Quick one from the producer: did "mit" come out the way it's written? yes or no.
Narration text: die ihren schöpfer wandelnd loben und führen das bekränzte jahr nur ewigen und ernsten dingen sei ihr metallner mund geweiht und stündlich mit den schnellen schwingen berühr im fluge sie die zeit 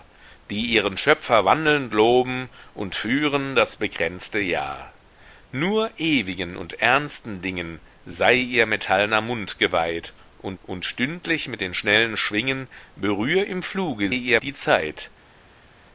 yes